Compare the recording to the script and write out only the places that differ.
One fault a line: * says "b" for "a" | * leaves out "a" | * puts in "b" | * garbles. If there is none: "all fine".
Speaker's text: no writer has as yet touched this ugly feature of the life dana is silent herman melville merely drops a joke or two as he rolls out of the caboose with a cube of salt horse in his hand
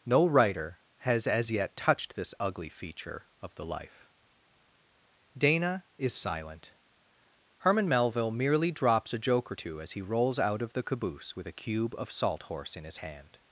all fine